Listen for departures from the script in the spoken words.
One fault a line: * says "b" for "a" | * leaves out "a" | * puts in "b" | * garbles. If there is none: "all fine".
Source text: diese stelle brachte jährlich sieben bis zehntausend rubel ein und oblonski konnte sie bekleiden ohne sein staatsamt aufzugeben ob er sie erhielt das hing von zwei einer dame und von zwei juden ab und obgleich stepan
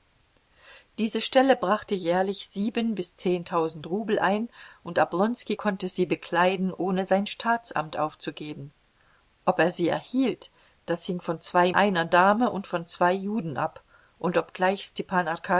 all fine